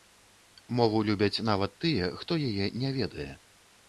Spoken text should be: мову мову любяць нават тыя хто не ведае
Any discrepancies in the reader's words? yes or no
yes